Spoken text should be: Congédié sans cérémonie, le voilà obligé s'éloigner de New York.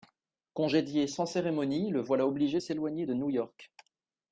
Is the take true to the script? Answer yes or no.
yes